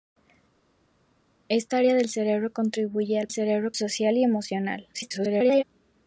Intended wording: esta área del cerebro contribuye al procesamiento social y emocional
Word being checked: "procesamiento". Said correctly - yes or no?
no